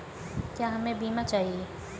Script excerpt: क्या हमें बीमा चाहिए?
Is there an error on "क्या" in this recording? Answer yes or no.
no